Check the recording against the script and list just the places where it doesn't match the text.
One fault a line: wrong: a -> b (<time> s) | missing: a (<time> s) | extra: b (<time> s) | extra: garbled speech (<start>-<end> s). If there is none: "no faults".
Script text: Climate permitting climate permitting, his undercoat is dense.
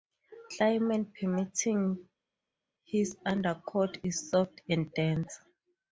missing: climate permitting (2.1 s)
extra: soft and (4.3 s)